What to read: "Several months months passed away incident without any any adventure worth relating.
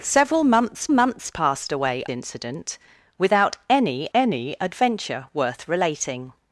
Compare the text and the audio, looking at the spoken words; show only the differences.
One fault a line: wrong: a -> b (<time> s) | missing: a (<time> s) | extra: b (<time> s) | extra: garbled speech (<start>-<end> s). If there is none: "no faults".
no faults